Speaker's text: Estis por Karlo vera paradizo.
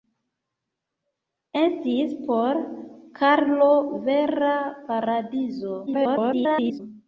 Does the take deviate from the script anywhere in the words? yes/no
yes